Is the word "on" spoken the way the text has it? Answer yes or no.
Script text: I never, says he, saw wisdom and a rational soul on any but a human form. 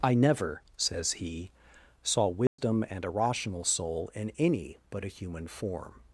no